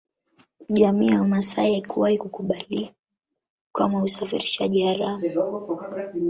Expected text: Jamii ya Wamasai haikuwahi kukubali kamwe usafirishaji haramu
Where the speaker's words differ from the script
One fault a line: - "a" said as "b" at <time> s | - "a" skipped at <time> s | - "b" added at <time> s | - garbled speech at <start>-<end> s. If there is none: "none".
none